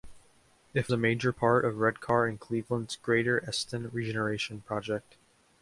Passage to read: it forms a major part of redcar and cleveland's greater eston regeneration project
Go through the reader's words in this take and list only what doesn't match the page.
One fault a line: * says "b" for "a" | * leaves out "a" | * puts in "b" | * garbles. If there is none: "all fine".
* leaves out "forms"